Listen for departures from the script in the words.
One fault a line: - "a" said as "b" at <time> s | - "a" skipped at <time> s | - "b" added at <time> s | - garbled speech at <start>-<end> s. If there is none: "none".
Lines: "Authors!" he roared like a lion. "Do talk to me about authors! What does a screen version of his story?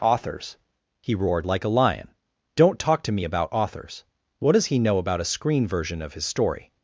- "Do" said as "Don't" at 2.5 s
- "he know about" added at 4.7 s